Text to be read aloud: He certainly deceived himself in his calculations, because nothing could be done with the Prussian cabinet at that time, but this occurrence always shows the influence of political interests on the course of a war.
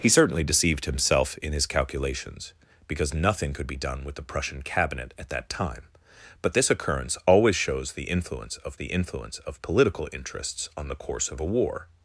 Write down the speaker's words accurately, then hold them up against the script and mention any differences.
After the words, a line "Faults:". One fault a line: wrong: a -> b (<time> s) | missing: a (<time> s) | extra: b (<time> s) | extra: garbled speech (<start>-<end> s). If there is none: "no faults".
He certainly deceived himself in his calculations, because nothing could be done with the Prussian cabinet at that time, but this occurrence always shows the influence of the influence of political interests on the course of a war.
Faults:
extra: the influence of (8.7 s)